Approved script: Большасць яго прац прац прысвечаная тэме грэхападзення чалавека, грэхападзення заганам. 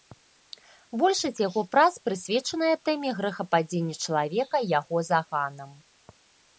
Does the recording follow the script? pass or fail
fail